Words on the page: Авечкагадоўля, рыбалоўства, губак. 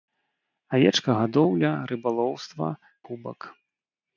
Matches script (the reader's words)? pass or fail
pass